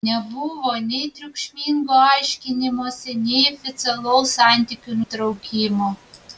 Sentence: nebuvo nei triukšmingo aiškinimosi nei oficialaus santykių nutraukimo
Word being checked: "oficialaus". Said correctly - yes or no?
yes